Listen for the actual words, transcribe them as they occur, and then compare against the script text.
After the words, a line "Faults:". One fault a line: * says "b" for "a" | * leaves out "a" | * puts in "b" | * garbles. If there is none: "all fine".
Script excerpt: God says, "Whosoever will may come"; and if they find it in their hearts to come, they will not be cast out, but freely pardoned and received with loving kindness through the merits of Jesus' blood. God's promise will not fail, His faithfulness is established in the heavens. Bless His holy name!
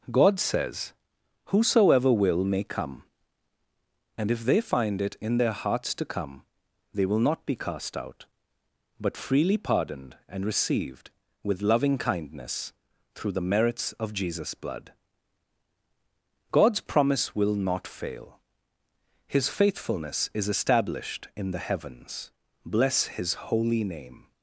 God says, "Whosoever will may come"; and if they find it in their hearts to come, they will not be cast out, but freely pardoned and received with loving kindness through the merits of Jesus' blood. God's promise will not fail, His faithfulness is established in the heavens. Bless His holy name!
Faults:
all fine